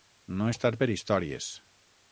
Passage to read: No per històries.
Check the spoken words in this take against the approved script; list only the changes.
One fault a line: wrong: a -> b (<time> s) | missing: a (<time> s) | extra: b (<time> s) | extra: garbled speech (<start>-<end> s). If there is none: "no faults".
extra: estar (0.5 s)